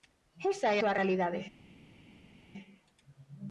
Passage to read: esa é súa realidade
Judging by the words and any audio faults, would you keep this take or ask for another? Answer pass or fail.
pass